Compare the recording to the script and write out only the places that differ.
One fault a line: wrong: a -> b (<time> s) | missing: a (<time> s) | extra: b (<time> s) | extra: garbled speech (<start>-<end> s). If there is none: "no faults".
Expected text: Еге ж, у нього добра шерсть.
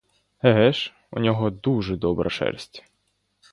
extra: дуже (1.5 s)